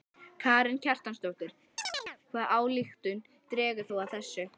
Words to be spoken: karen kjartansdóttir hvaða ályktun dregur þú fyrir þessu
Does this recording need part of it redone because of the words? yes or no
yes